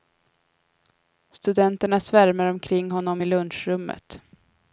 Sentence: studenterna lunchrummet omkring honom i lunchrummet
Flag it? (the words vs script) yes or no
yes